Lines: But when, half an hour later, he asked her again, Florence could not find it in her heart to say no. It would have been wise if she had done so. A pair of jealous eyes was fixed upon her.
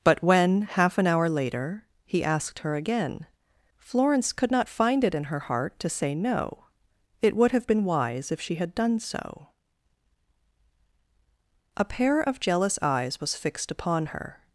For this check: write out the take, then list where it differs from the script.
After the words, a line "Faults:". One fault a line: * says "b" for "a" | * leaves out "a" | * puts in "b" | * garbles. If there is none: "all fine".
But when, half an hour later, he asked her again, Florence could not find it in her heart to say no. It would have been wise if she had done so. A pair of jealous eyes was fixed upon her.
Faults:
all fine